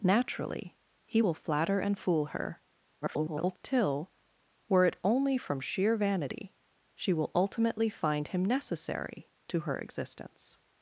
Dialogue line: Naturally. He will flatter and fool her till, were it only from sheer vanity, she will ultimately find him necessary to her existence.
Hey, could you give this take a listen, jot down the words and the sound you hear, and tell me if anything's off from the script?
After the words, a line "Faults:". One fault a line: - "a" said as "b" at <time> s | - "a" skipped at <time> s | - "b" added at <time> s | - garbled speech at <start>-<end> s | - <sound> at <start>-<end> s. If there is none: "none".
Naturally. He will flatter and fool her [garbled] till, were it only from sheer vanity, she will ultimately find him necessary to her existence.
Faults:
- garbled speech at 3.0-3.6 s